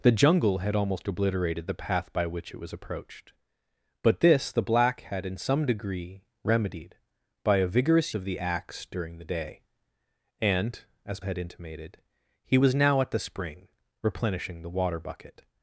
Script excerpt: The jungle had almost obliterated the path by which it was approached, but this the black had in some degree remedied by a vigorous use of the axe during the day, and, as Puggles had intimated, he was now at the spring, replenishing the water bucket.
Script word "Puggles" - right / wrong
wrong